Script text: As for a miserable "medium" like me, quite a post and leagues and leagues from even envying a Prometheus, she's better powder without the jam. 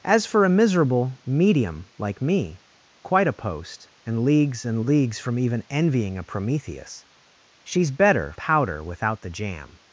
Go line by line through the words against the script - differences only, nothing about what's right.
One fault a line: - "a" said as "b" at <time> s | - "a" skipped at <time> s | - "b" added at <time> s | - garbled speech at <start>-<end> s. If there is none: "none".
none